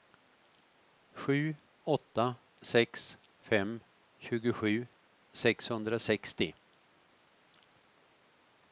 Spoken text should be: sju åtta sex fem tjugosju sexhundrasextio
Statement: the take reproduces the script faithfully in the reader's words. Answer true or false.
true